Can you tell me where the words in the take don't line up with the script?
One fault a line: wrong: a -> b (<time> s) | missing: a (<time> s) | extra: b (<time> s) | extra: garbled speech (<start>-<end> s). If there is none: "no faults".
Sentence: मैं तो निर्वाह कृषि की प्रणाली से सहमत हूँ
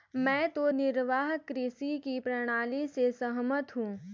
no faults